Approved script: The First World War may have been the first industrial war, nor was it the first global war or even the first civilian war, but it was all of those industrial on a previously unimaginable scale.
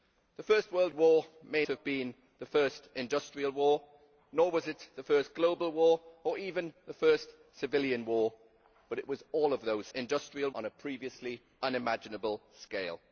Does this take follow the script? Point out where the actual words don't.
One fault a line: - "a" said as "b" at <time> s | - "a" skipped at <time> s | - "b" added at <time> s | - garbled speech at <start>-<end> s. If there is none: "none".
none